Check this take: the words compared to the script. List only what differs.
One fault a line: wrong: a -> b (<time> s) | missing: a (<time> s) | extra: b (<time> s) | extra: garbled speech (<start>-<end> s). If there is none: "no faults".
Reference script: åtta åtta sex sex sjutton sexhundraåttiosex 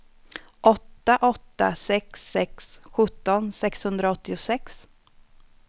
no faults